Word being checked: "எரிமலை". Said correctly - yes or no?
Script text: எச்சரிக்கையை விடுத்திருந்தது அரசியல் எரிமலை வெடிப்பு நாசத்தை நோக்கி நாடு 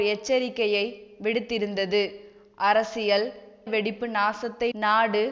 no